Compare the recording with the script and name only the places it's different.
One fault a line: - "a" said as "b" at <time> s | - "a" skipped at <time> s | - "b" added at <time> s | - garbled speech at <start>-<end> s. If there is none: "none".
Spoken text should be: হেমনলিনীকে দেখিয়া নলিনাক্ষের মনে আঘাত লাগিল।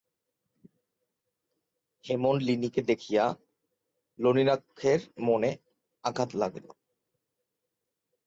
none